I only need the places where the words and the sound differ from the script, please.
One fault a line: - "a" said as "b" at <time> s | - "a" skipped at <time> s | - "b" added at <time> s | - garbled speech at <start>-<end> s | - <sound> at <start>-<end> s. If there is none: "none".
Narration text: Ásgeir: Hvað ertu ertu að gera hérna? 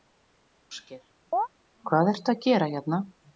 - chirp at 1.3-1.5 s
- "ertu" skipped at 2.4 s